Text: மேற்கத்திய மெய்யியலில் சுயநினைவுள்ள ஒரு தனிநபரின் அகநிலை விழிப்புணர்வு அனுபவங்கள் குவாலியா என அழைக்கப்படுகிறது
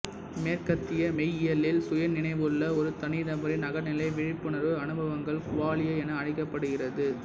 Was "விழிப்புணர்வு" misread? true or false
false